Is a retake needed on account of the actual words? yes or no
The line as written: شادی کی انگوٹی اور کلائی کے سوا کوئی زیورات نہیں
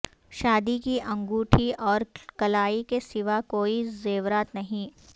no